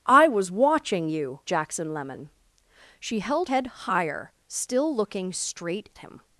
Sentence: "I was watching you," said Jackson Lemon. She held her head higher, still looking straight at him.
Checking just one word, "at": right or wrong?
wrong